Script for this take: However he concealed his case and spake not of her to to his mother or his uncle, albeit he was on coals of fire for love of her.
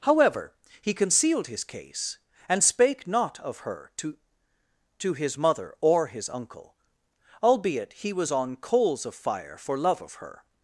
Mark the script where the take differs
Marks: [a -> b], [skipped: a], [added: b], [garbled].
However he concealed his case and spake not of her to to his mother or his uncle, albeit he was on coals of fire for love of her.